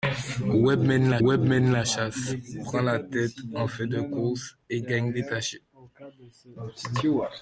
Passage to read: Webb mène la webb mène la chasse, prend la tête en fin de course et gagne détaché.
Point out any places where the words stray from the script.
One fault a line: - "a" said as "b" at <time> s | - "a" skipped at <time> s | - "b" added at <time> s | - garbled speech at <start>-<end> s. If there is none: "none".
none